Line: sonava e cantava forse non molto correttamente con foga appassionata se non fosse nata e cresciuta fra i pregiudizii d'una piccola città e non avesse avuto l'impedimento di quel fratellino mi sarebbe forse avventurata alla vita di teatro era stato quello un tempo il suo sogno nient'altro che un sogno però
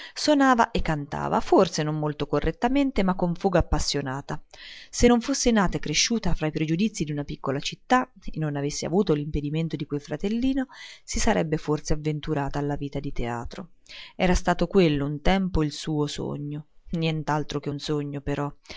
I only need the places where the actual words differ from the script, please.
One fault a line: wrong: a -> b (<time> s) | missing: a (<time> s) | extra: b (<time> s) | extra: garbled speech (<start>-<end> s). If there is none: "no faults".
extra: ma (3.0 s)
wrong: mi -> si (11.0 s)